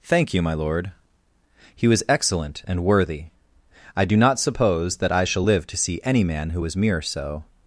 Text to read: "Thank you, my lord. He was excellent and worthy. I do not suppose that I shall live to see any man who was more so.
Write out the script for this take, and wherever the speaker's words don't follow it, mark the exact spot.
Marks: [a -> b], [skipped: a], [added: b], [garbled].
"Thank you, my lord. He was excellent and worthy. I do not suppose that I shall live to see any man who was [more -> mere] so.